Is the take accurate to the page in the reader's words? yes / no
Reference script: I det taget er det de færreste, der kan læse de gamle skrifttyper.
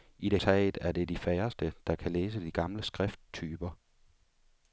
yes